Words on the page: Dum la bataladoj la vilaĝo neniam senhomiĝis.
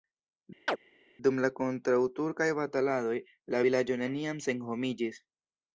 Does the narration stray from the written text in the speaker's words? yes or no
yes